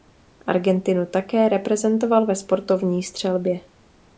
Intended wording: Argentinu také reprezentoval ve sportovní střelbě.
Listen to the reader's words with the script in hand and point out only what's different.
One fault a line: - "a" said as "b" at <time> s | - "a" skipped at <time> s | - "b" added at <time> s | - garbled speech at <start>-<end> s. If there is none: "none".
none